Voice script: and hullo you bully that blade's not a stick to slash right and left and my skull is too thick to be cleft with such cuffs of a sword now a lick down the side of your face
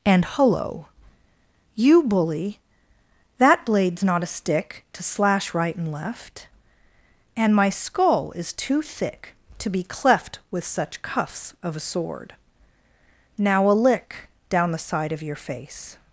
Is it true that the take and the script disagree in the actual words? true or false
false